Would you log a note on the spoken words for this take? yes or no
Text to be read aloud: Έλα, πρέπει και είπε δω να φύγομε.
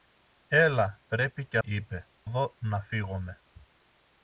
no